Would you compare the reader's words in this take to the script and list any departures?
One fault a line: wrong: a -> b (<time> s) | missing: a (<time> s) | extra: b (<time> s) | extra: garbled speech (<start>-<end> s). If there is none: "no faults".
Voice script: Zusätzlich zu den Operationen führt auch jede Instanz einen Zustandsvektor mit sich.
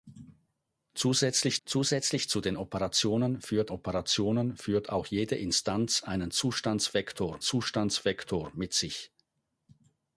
extra: zusätzlich (1.7 s)
extra: Operationen führt (3.7 s)
extra: Zustandsvektor (7.4 s)